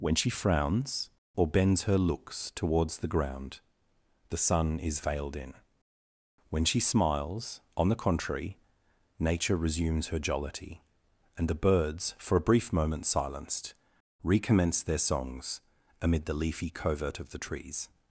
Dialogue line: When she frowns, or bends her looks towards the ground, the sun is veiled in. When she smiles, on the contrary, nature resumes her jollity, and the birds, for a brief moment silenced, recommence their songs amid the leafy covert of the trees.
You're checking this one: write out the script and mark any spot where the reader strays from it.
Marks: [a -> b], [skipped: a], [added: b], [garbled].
When she frowns, or bends her looks towards the ground, the sun is veiled in. When she smiles, on the contrary, nature resumes her jollity, and the birds, for a brief moment silenced, recommence their songs amid the leafy covert of the trees.